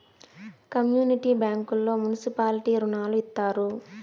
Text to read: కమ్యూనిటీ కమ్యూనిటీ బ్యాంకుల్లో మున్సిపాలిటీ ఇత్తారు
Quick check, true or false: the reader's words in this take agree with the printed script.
false